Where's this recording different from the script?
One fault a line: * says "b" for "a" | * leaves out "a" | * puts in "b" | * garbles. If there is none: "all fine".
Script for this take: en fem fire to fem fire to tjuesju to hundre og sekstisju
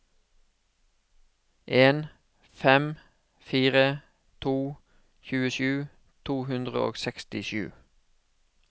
* leaves out "fem fire to"